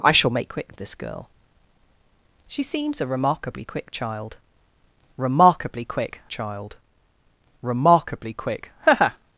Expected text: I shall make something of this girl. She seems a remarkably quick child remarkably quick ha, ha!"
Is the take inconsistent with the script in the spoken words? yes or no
yes